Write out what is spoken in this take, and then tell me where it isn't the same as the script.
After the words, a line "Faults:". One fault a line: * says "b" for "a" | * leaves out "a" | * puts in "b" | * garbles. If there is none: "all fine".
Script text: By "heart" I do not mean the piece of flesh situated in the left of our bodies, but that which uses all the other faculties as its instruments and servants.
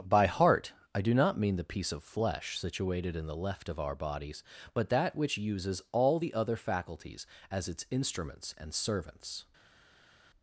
By "heart" I do not mean the piece of flesh situated in the left of our bodies, but that which uses all the other faculties as its instruments and servants.
Faults:
all fine